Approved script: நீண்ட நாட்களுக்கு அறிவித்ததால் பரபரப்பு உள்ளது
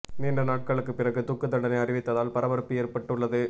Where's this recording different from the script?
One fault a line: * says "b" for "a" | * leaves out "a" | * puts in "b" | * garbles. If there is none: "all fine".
* puts in "பிறகு தூக்கு தண்டனை"
* puts in "ஏற்பட்டு"